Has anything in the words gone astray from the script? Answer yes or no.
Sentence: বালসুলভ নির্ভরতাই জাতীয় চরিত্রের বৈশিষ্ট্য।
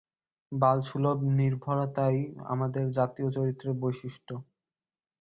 yes